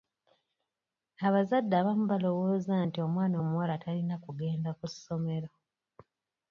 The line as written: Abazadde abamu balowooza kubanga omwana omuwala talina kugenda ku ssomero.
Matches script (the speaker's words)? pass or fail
fail